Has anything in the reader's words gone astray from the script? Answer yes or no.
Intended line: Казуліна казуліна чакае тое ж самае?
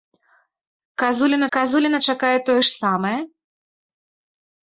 no